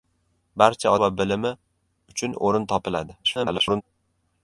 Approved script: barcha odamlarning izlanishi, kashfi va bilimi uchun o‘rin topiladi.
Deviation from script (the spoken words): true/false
true